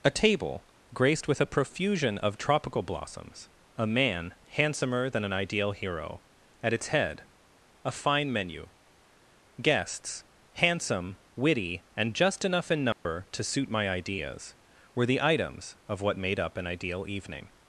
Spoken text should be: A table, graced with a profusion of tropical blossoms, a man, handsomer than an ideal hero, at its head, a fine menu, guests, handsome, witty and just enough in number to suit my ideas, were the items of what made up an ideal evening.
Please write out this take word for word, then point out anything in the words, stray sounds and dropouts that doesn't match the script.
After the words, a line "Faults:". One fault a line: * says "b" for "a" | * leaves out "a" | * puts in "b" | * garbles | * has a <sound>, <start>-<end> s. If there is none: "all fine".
A table, graced with a profusion of tropical blossoms, a man, handsomer than an ideal hero, at its head, a fine menu, guests, handsome, witty and just enough in number to suit my ideas, were the items of what made up an ideal evening.
Faults:
* has a dropout, 12.9-13.1 s